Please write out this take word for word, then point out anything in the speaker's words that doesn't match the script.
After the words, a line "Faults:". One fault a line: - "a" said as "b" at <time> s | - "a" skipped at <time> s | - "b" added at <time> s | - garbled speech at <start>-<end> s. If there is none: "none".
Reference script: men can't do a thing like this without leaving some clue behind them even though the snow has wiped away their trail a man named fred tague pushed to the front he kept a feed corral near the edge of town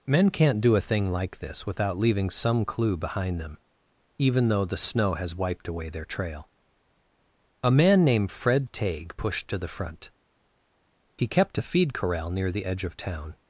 men can't do a thing like this without leaving some clue behind them even though the snow has wiped away their trail a man named fred tague pushed to the front he kept a feed corral near the edge of town
Faults:
none